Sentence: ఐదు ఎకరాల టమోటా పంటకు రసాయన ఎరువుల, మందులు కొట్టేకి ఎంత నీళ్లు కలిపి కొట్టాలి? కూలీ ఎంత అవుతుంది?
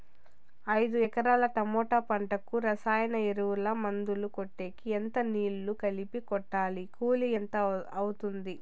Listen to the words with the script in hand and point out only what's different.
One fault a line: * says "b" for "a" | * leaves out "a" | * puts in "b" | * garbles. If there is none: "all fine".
all fine